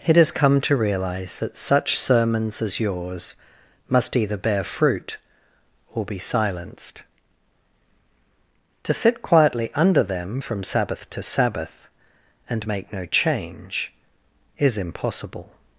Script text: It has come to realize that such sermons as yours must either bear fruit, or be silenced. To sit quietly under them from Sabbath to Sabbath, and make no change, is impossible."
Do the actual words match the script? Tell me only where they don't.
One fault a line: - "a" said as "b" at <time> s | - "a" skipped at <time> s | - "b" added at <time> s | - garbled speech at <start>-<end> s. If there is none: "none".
none